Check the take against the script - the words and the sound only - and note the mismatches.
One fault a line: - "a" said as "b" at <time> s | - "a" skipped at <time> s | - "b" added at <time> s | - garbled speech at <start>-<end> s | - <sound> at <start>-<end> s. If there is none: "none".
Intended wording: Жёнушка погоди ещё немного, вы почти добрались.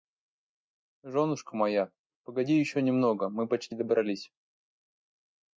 - "моя" added at 1.6 s
- "вы" said as "мы" at 3.3 s